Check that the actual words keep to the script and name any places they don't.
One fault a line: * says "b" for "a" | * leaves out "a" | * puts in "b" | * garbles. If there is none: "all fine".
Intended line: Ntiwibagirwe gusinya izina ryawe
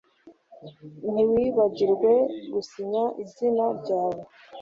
all fine